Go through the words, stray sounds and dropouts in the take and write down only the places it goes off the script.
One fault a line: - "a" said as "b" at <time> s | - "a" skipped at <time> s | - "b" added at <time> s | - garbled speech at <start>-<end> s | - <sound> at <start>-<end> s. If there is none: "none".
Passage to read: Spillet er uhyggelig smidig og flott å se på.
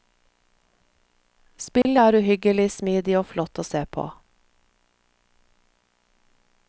- dropout at 1.8-1.8 s